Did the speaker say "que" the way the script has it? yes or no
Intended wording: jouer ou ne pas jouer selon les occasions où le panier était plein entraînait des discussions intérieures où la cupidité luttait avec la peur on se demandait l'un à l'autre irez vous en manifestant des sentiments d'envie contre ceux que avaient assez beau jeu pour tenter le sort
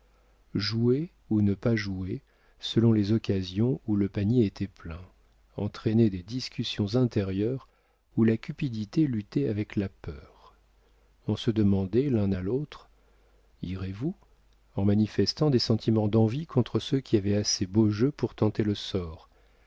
no